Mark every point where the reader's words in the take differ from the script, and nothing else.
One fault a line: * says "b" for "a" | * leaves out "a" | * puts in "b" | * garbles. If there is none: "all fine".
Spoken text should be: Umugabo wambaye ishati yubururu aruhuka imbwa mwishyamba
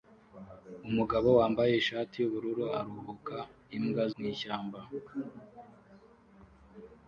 all fine